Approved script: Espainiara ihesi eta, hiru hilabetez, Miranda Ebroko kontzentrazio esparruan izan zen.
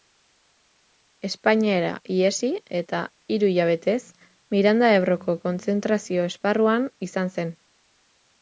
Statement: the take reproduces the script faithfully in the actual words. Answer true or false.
true